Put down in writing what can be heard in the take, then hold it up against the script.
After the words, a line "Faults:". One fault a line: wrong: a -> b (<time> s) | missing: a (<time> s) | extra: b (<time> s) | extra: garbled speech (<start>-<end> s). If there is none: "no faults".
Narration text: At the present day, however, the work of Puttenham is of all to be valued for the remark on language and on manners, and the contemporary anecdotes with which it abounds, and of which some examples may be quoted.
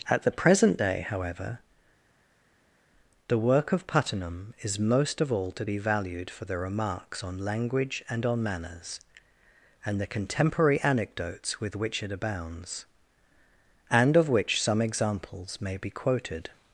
At the present day, however, the work of Puttenham is most of all to be valued for the remarks on language and on manners, and the contemporary anecdotes with which it abounds, and of which some examples may be quoted.
Faults:
extra: most (4.8 s)
wrong: remark -> remarks (6.6 s)